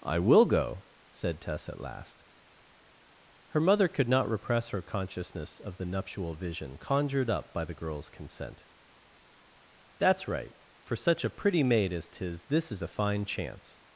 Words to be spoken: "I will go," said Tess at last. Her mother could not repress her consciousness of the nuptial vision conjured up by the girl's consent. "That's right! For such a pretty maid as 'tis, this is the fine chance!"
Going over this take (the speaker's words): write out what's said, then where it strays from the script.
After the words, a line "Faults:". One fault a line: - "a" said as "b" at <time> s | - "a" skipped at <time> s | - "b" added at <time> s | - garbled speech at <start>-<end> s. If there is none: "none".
"I will go," said Tess at last. Her mother could not repress her consciousness of the nuptial vision conjured up by the girl's consent. "That's right! For such a pretty maid as 'tis, this is a fine chance!"
Faults:
- "the" said as "a" at 12.8 s